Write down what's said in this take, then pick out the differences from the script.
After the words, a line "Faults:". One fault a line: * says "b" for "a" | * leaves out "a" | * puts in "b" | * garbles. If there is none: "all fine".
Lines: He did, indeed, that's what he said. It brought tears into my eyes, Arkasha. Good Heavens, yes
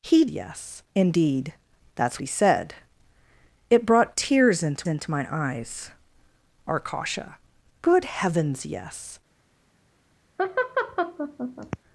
He yes, indeed, that's he said. It brought tears into into my eyes, Arkasha. Good Heavens, yes
Faults:
* says "yes" for "did"
* leaves out "what"
* puts in "into"